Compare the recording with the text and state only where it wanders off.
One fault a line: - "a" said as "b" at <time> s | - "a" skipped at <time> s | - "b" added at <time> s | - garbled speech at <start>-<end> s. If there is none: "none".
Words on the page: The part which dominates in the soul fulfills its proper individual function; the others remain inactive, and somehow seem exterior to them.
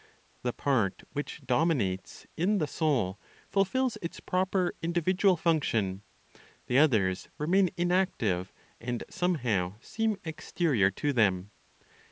none